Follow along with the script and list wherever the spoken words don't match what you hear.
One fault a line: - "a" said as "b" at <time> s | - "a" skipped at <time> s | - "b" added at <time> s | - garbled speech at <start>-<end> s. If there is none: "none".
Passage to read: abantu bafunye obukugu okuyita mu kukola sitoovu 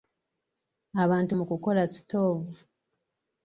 - "bafunye obukugu okuyita" skipped at 1.3 s